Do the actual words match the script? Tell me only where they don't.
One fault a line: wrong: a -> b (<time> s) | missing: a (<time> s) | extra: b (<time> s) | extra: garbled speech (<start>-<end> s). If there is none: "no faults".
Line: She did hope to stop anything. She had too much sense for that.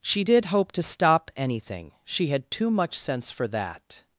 no faults